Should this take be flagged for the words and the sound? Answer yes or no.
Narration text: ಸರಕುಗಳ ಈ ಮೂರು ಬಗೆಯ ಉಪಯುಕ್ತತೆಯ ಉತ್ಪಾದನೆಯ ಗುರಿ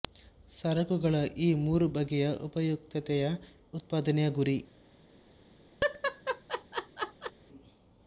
yes